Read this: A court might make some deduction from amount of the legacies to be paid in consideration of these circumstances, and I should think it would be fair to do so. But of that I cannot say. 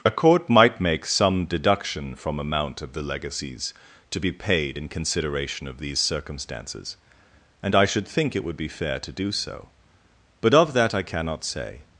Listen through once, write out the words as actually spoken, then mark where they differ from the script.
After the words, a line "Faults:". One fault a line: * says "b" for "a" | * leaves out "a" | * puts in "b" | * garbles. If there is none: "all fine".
A court might make some deduction from amount of the legacies to be paid in consideration of these circumstances, and I should think it would be fair to do so. But of that I cannot say.
Faults:
all fine